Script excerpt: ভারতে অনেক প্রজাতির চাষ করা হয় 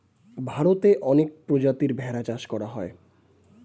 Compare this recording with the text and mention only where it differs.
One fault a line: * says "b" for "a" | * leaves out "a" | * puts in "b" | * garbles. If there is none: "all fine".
* puts in "ভেড়া"